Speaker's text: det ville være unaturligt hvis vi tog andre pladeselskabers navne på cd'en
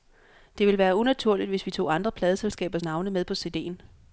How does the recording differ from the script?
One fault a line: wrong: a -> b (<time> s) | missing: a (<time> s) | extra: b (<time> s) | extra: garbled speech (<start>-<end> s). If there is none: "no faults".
extra: med (3.1 s)